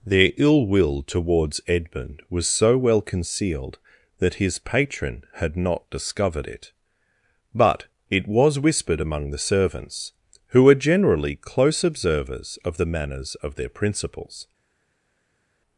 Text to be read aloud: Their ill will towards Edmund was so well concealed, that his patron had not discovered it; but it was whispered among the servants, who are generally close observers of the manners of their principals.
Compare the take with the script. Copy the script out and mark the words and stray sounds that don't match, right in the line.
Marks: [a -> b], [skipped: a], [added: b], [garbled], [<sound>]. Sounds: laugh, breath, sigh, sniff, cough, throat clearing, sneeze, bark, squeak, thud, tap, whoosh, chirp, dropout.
Their ill will towards Edmund was so well concealed, that his patron had not discovered it; but it was whispered among the servants, who [are -> were] generally close observers of the manners of their principals.